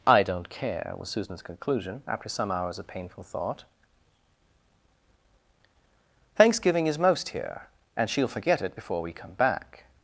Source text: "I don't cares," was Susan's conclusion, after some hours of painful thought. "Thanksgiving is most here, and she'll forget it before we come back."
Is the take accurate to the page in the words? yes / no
no